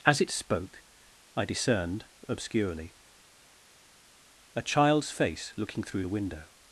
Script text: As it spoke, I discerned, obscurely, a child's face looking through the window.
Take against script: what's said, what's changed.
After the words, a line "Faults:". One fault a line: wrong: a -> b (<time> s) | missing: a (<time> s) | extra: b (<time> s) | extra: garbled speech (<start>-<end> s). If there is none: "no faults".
As it spoke, I discerned, obscurely, a child's face looking through the window.
Faults:
no faults